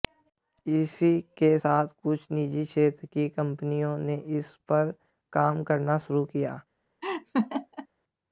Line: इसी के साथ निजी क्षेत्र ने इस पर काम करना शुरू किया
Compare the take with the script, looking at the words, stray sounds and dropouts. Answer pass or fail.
fail